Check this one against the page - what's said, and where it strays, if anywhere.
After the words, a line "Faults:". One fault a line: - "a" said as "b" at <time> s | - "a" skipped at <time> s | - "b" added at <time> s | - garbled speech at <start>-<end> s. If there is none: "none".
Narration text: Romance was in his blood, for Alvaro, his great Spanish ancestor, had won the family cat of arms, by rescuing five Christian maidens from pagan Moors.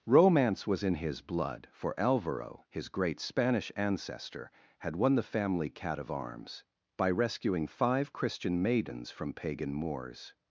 Romance was in his blood, for Alvaro, his great Spanish ancestor, had won the family cat of arms, by rescuing five Christian maidens from pagan Moors.
Faults:
none